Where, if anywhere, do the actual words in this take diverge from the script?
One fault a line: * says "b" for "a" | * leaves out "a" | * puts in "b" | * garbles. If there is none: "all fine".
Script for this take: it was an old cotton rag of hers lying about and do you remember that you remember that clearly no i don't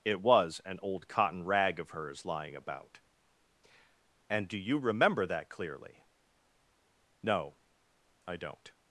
* leaves out "you remember that"